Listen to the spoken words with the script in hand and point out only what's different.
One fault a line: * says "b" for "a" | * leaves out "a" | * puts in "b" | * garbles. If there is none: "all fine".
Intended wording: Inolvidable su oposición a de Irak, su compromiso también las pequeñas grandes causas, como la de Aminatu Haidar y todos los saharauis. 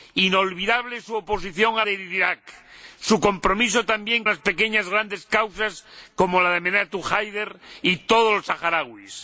all fine